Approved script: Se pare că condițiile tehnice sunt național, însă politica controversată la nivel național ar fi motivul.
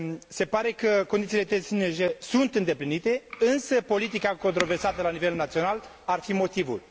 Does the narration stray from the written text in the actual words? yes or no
yes